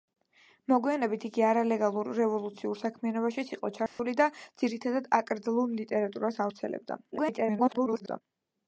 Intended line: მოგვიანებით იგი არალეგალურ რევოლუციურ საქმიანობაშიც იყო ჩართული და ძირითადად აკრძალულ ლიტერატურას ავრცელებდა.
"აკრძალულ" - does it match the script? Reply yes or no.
yes